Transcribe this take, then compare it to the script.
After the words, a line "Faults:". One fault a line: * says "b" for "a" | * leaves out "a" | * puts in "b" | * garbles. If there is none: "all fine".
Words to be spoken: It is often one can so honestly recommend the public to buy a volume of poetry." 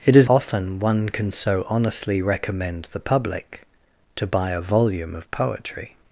It is often one can so honestly recommend the public to buy a volume of poetry."
Faults:
all fine